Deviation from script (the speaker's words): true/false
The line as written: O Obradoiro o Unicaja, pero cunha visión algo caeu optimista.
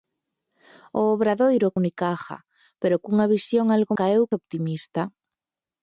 false